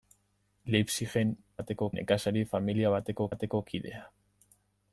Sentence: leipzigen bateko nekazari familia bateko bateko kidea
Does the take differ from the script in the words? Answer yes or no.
no